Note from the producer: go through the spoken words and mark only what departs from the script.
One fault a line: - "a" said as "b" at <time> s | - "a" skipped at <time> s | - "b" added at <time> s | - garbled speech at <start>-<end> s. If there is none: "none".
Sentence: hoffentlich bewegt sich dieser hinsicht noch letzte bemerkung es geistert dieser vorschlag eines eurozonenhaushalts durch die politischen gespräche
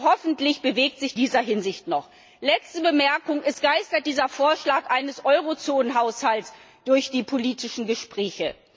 none